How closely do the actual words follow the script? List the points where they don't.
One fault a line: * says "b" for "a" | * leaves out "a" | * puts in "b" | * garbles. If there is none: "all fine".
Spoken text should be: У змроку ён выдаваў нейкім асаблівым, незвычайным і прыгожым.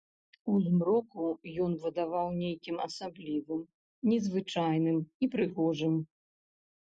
all fine